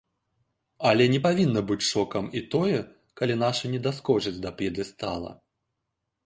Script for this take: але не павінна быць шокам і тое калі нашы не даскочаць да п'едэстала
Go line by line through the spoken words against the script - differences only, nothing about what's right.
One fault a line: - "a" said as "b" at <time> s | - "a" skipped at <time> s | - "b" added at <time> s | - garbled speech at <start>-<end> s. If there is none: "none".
none